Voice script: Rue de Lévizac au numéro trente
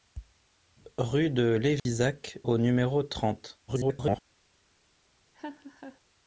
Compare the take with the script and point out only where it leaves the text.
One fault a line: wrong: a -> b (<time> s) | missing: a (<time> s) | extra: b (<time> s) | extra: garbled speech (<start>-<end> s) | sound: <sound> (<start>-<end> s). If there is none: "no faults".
sound: dropout (1.8-1.9 s)
extra: garbled speech (3.7-4.2 s)
sound: laugh (5.3-6.0 s)